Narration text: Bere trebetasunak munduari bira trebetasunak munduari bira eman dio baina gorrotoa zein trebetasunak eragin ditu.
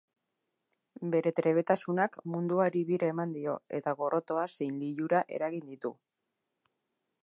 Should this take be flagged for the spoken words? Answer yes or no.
yes